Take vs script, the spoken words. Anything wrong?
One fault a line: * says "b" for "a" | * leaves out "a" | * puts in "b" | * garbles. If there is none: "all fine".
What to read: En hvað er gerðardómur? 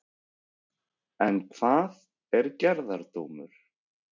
all fine